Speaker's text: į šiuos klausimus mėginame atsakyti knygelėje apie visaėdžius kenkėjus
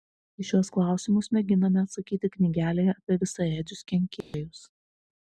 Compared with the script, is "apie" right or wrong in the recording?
right